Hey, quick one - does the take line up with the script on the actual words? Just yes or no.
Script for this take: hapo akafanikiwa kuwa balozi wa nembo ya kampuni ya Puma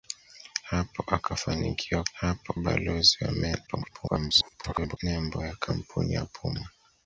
no